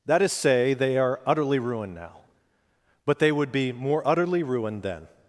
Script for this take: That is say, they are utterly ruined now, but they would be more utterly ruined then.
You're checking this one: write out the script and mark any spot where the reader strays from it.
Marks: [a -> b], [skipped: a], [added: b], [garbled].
That is say, they are utterly ruined now, but they would be more utterly ruined then.